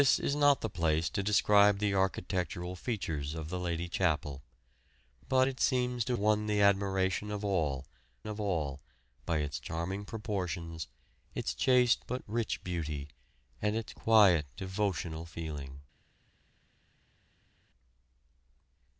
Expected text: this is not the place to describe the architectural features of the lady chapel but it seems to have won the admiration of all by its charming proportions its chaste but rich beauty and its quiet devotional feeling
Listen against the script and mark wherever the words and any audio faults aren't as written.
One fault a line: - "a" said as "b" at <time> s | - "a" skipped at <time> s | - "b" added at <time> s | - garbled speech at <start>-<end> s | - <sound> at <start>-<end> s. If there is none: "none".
- "have" skipped at 6.2 s
- "of all" added at 8.3 s